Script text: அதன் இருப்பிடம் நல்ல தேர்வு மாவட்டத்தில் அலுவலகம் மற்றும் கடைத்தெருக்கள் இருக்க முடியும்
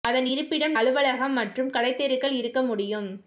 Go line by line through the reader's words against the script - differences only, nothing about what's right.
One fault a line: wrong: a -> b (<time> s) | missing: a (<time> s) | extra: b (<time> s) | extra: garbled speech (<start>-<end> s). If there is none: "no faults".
missing: நல்ல தேர்வு மாவட்டத்தில் (0.7 s)